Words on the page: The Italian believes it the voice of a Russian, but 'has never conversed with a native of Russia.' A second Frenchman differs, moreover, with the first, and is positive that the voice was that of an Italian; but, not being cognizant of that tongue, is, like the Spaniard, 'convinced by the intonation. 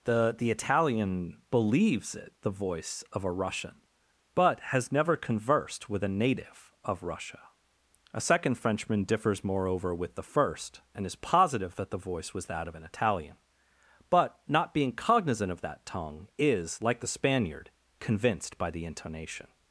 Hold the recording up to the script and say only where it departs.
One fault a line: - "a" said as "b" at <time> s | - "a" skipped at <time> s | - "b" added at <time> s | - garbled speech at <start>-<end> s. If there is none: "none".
- "the" added at 0.4 s